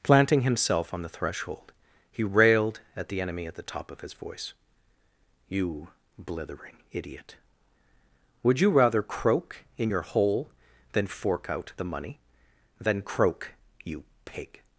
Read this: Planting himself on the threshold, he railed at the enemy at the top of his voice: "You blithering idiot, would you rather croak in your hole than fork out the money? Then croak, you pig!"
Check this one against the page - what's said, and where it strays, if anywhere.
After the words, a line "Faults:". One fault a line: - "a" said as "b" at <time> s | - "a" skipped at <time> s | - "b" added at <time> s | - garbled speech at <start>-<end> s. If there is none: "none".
Planting himself on the threshold, he railed at the enemy at the top of his voice: "You blithering idiot, would you rather croak in your hole than fork out the money? Then croak, you pig!"
Faults:
none